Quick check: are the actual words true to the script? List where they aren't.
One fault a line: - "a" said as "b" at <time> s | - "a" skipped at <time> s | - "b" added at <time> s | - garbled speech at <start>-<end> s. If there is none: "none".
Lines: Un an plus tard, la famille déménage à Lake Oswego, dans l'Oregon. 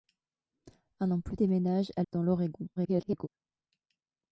- "tard la famille" skipped at 1.4 s
- "Lake Oswego" skipped at 2.0 s
- garbled speech at 2.8-3.3 s